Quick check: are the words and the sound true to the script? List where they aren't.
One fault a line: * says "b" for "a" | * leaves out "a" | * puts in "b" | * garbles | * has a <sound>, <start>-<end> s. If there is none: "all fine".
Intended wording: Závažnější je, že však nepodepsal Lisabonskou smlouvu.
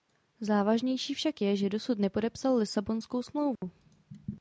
* puts in "však"
* says "dosud" for "však"
* has a dropout, 3.6-3.6 s